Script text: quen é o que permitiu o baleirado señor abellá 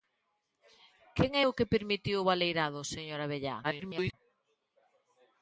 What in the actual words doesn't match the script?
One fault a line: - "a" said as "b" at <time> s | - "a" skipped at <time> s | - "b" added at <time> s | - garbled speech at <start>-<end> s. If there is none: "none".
- garbled speech at 3.6-4.1 s